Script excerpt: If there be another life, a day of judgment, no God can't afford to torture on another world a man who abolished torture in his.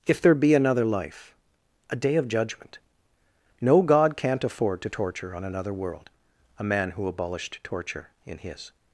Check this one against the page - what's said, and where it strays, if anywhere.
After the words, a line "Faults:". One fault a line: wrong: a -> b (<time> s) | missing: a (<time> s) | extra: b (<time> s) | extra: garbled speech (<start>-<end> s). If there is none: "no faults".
If there be another life, a day of judgment, no God can't afford to torture on another world a man who abolished torture in his.
Faults:
no faults